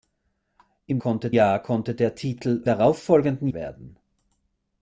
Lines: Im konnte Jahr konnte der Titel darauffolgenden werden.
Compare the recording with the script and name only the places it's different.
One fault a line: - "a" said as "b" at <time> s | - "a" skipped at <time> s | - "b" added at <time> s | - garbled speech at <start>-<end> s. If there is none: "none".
none